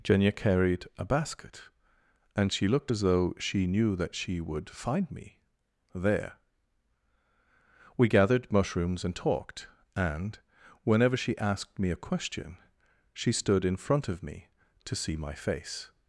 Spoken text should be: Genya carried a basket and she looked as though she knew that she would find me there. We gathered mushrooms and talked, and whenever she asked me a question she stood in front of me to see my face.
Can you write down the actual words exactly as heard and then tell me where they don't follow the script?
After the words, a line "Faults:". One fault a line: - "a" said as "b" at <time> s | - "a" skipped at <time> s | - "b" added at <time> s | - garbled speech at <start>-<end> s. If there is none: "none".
Genya carried a basket and she looked as though she knew that she would find me there. We gathered mushrooms and talked, and whenever she asked me a question she stood in front of me to see my face.
Faults:
none